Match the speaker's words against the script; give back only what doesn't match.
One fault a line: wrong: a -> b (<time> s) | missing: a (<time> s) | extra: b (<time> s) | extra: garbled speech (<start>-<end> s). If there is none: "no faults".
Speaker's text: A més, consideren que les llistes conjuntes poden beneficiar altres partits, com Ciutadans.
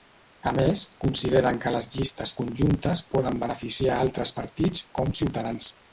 no faults